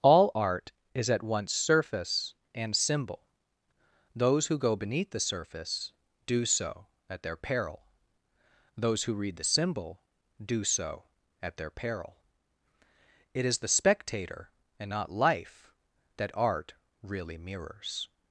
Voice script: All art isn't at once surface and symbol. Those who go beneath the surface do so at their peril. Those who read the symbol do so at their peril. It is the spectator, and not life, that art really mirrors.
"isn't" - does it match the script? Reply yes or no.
no